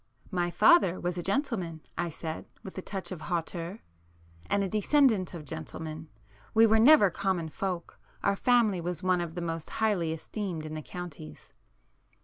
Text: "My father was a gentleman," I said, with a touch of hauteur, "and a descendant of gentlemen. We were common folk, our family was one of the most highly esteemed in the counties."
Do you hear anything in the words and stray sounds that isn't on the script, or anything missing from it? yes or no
yes